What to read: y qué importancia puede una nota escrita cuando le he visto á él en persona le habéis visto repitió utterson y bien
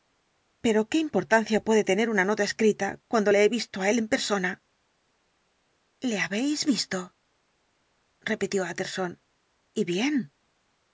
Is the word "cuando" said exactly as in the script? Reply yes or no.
yes